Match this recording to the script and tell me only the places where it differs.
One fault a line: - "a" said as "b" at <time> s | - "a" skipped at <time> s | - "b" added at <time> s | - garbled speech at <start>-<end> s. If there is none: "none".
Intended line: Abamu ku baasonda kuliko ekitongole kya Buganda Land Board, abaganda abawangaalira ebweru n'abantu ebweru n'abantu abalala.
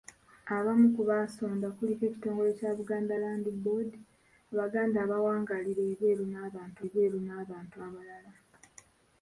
none